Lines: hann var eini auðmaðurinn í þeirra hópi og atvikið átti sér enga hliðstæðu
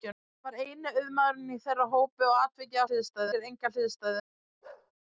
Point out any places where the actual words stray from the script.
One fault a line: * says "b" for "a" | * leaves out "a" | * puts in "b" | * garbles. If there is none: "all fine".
* says "hliðstæðu" for "átti"